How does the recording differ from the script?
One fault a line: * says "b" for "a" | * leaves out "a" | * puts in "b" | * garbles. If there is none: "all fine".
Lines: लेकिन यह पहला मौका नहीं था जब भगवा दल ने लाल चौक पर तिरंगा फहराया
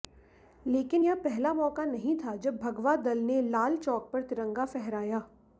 all fine